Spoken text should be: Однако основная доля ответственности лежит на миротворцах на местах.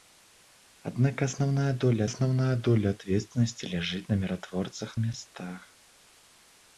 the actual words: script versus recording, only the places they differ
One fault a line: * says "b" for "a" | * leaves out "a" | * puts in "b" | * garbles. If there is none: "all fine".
* puts in "основная доля"
* leaves out "на"